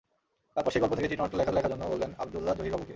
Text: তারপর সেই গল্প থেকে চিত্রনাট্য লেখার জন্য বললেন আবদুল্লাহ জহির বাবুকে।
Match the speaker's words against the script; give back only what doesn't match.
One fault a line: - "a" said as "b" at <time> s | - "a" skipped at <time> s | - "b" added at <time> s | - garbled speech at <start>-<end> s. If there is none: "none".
- "লেখার" added at 1.5 s